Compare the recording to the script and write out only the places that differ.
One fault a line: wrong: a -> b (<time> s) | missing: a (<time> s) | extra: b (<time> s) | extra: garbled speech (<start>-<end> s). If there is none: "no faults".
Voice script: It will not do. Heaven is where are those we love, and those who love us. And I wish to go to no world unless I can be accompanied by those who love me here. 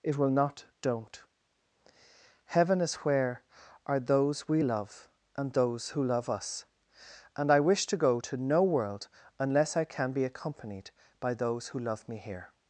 wrong: do -> don't (0.8 s)